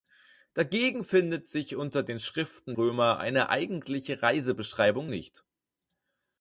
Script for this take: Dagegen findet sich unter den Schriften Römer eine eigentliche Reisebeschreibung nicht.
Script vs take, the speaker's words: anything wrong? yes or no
no